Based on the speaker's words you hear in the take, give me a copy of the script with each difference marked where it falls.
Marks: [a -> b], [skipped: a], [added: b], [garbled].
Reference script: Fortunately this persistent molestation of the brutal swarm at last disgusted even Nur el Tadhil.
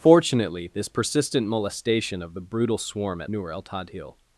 Fortunately this persistent molestation of the brutal swarm at [skipped: last disgusted even] Nur el Tadhil.